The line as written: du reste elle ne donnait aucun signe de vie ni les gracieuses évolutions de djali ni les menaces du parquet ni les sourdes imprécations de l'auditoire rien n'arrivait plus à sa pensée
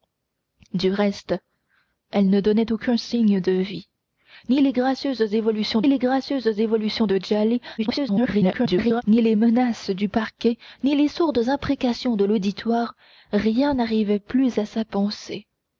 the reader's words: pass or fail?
fail